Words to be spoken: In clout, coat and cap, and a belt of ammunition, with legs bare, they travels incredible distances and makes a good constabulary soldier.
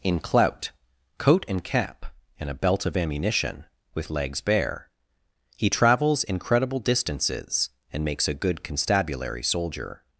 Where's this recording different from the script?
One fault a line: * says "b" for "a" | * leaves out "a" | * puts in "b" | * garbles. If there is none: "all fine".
* says "he" for "they"